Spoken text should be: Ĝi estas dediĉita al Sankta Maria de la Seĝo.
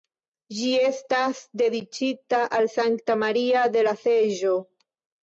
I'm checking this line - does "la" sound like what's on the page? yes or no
yes